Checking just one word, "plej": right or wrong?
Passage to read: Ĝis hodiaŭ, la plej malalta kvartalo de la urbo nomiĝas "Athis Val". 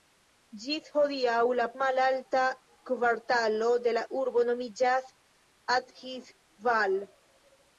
wrong